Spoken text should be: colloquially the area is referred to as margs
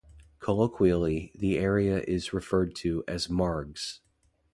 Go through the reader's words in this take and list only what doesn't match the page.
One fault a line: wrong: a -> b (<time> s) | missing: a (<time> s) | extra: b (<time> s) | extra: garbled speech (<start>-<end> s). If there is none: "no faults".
no faults